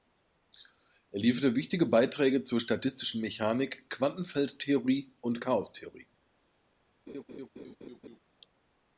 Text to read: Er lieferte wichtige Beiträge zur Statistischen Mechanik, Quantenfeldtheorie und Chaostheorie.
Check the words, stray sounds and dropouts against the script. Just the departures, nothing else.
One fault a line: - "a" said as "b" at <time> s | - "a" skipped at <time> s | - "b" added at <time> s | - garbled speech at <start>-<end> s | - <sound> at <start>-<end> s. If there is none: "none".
- laugh at 7.1-8.2 s